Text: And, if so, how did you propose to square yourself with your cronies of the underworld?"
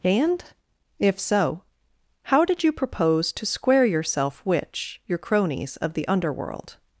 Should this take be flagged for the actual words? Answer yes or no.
yes